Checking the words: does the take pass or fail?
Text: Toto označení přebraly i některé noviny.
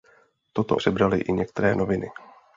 fail